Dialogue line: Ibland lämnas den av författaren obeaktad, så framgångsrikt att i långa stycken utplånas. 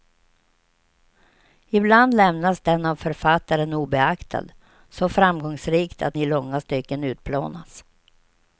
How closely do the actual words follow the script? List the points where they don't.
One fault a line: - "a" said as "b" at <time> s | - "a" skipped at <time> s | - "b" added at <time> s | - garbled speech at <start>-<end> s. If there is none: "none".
none